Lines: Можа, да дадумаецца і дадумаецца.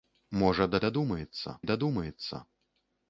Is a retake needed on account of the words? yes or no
no